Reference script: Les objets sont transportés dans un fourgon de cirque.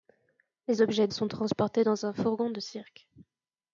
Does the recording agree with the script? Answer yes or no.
yes